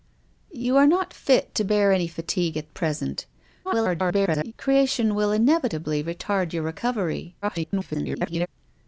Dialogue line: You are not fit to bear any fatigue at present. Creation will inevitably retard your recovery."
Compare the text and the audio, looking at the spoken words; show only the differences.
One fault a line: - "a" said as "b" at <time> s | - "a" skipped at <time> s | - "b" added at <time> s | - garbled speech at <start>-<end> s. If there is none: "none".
- garbled speech at 3.6-4.5 s
- garbled speech at 7.4-8.5 s